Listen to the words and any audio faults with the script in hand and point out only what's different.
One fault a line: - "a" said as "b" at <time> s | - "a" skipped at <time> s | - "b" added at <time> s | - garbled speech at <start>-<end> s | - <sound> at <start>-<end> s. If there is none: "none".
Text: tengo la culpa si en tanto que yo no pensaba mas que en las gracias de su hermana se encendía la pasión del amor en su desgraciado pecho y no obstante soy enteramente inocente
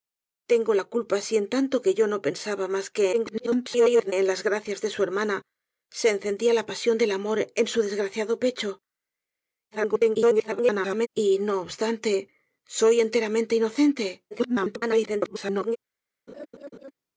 - garbled speech at 3.1-4.1 s
- garbled speech at 9.7-11.1 s
- garbled speech at 14.3-15.8 s
- laugh at 16.3-16.9 s